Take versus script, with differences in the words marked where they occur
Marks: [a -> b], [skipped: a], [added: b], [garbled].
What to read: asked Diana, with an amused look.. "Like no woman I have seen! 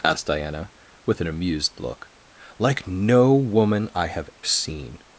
asked Diana, with an amused look.. "Like no woman I have seen!